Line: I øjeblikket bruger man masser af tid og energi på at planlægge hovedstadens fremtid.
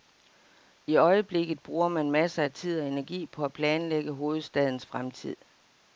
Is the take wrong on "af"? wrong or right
right